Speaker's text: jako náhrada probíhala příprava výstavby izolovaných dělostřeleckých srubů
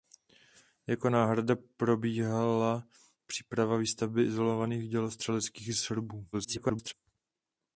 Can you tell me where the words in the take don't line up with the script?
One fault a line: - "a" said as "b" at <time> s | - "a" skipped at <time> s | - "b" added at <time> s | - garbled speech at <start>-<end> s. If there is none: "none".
- garbled speech at 6.3-6.9 s